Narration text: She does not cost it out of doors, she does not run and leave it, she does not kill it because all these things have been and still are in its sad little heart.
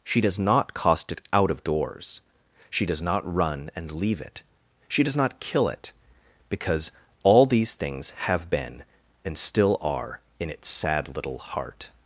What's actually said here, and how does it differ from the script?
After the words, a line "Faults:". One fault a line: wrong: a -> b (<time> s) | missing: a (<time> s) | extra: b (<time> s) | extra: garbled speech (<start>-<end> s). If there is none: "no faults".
She does not cost it out of doors, she does not run and leave it, she does not kill it because all these things have been and still are in its sad little heart.
Faults:
no faults